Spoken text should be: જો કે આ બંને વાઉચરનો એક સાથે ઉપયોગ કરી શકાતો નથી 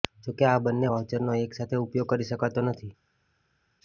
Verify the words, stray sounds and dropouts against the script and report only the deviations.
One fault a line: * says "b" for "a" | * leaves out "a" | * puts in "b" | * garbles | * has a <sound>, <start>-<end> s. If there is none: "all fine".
all fine